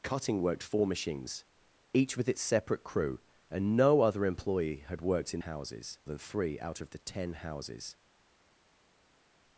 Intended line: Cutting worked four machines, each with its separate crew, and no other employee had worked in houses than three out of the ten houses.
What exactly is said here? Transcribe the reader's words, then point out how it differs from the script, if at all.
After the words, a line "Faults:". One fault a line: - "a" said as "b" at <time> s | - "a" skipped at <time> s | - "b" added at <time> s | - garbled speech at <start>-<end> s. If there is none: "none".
Cutting worked four machines, each with its separate crew, and no other employee had worked in houses than three out of the ten houses.
Faults:
none